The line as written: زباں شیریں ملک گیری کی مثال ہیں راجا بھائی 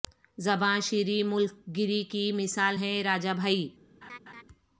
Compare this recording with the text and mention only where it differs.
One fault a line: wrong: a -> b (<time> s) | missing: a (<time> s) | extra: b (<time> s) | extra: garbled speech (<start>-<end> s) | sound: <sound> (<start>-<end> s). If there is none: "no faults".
sound: laugh (4.0-4.4 s)